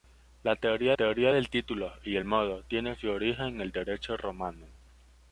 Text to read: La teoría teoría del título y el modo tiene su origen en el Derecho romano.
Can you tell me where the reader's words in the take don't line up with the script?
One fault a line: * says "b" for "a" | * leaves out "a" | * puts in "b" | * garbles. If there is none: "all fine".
all fine